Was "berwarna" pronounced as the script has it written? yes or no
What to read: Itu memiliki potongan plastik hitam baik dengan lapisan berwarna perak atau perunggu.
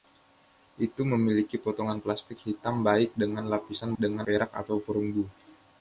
no